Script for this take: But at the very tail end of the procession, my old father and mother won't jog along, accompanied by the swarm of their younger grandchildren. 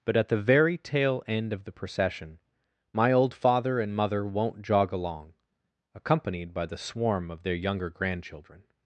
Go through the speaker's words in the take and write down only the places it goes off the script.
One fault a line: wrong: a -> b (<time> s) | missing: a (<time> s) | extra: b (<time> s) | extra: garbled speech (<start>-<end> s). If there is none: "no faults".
no faults